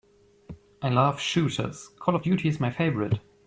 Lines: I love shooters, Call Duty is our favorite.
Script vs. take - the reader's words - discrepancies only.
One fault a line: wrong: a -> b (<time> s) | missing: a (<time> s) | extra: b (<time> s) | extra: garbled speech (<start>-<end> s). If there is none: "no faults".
extra: of (2.1 s)
wrong: our -> my (2.6 s)